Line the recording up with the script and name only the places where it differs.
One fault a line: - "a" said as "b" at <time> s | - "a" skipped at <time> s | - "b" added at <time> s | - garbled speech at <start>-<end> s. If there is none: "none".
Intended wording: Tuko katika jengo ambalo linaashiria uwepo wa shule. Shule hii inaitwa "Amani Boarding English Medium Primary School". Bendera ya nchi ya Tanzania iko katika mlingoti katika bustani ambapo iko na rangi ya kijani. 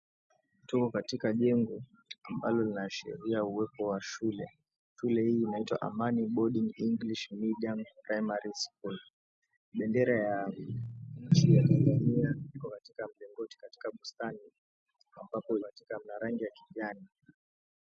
- "iko" said as "katika" at 15.6 s